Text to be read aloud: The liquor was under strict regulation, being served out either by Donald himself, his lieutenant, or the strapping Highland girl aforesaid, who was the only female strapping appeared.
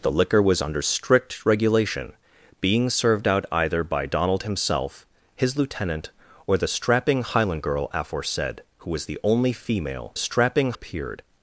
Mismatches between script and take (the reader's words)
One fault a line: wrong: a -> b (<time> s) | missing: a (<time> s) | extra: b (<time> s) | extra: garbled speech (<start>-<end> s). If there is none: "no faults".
no faults